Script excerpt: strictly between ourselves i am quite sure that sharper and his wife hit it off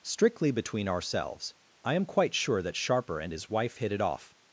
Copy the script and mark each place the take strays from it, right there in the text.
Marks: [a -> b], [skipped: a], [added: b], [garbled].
strictly between ourselves i am quite sure that sharper and his wife hit it off